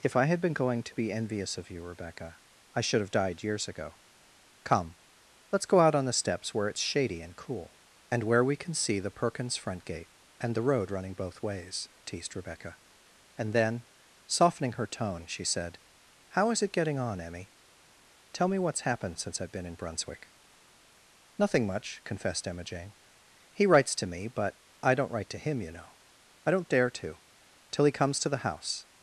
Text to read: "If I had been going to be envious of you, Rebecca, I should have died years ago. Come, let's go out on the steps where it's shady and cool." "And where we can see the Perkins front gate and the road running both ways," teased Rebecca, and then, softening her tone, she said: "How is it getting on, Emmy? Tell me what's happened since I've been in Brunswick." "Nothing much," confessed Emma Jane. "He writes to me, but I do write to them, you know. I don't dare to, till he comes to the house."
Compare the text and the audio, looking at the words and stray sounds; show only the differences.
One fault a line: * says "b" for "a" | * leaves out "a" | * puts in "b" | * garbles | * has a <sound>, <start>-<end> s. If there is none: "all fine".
* says "don't" for "do"
* says "him" for "them"